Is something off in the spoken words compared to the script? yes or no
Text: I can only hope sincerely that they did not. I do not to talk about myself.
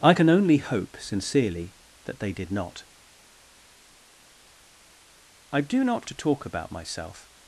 no